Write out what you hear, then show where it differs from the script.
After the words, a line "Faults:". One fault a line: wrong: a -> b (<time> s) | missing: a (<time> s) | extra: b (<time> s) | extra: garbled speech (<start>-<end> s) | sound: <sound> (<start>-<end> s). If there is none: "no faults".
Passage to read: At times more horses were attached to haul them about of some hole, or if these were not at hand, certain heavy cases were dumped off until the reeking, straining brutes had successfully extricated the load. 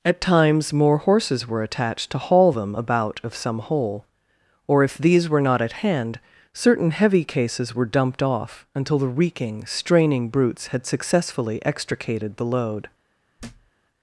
At times more horses were attached to haul them about of some hole, or if these were not at hand, certain heavy cases were dumped off until the reeking, straining brutes had successfully extricated the load.
Faults:
sound: thud (13.4-13.7 s)